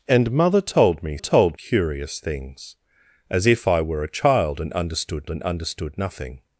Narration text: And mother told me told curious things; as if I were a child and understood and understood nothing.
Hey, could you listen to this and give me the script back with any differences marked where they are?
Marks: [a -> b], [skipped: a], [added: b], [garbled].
And mother told me told curious things; as if I were a child and understood and understood nothing.